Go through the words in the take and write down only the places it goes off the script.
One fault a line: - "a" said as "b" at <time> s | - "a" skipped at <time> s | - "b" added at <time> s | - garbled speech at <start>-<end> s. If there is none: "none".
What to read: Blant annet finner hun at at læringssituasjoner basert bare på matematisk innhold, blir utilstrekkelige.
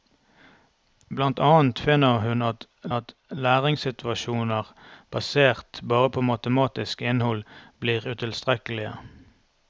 none